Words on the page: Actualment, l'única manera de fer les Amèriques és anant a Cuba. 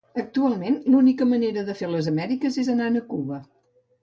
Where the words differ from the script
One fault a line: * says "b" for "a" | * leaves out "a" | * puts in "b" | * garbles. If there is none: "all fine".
all fine